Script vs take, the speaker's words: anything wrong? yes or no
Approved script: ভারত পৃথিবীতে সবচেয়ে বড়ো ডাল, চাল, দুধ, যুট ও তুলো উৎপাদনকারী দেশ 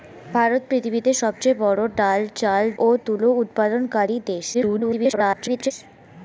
yes